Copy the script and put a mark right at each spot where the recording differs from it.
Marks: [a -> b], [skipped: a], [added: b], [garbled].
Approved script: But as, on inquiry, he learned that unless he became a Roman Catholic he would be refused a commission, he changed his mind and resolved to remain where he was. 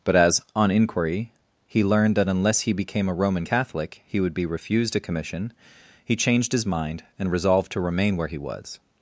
But as, on inquiry, he learned that unless he became a Roman Catholic he would be refused a commission, he changed his mind and resolved to remain where he was.